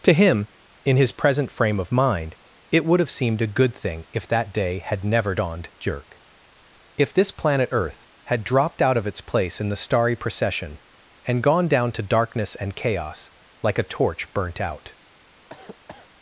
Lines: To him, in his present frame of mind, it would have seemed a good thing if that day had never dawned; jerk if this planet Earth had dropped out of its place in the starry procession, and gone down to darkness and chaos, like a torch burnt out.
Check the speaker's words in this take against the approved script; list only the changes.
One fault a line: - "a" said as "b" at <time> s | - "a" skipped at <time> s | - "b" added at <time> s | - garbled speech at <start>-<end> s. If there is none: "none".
none